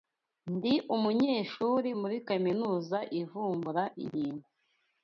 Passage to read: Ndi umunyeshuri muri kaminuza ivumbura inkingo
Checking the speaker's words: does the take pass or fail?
pass